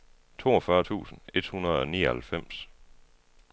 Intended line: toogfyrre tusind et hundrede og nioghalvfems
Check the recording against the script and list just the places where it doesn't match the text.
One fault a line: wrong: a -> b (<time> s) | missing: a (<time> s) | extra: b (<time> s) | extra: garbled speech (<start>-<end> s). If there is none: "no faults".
no faults